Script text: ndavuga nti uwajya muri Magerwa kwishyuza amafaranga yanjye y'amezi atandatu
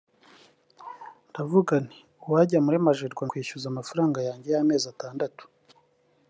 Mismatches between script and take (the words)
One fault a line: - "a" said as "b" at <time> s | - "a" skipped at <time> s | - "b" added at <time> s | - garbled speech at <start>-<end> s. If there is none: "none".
none